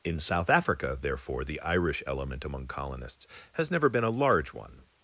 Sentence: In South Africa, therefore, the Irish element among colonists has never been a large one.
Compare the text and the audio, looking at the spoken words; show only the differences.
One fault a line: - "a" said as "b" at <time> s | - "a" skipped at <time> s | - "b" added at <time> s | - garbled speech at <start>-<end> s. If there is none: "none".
none